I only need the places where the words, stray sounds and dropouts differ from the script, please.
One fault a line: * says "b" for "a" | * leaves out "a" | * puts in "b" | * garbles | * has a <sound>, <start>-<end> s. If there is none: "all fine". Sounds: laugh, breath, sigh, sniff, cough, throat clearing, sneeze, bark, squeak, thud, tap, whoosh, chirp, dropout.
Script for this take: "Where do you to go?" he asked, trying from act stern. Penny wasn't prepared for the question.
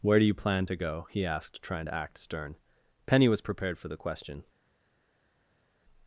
* puts in "plan"
* says "to" for "from"
* says "was" for "wasn't"